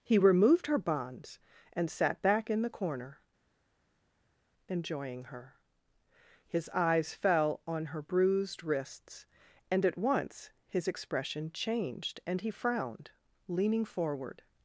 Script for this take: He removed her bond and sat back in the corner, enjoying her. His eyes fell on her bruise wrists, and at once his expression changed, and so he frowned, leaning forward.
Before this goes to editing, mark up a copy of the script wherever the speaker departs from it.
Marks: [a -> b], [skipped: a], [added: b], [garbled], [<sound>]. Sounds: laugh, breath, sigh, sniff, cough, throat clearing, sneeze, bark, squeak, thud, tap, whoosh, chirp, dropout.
He removed her [bond -> bonds] and sat back in the corner, enjoying her. His eyes fell on her [bruise -> bruised] wrists, and at once his expression changed, and [skipped: so] he frowned, leaning forward.